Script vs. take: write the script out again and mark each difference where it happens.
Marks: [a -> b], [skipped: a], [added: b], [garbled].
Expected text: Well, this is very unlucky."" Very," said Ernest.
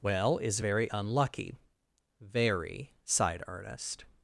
Well, [skipped: this] is very unlucky."" Very," [said -> sighed] Ernest.